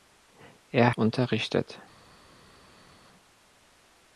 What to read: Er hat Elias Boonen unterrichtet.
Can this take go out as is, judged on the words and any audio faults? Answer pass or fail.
fail